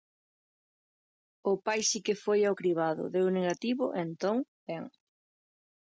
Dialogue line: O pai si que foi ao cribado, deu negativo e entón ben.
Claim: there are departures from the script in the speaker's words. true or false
false